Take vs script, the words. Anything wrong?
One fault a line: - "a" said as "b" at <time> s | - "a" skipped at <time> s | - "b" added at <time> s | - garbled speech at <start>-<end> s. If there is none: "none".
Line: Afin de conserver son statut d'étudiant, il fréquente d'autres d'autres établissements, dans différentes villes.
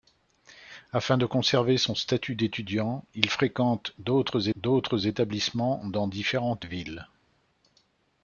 none